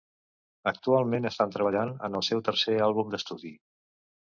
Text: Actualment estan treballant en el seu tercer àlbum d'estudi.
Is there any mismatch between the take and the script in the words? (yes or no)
no